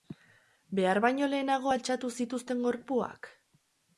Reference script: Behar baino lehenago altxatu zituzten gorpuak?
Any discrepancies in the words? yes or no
no